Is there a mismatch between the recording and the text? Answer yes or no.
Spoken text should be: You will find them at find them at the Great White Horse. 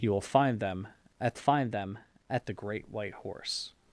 no